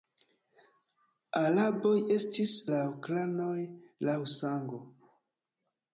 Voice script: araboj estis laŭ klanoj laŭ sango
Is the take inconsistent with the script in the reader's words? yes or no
no